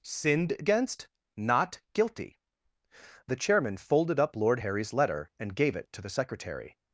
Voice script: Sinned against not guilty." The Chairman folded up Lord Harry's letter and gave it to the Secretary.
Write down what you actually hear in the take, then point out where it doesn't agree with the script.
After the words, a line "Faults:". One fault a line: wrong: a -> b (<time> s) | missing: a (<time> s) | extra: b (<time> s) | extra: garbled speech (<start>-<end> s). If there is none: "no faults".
Sinned against not guilty." The Chairman folded up Lord Harry's letter and gave it to the Secretary.
Faults:
no faults